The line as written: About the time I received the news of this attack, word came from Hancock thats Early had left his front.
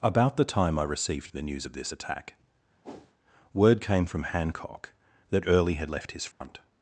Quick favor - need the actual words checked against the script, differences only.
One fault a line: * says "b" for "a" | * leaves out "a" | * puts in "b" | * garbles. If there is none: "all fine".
* says "that" for "thats"